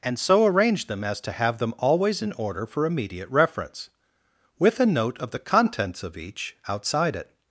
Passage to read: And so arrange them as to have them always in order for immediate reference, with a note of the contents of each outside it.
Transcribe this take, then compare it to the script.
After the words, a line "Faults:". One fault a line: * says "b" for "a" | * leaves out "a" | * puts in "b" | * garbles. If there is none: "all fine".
And so arrange them as to have them always in order for immediate reference, with a note of the contents of each outside it.
Faults:
all fine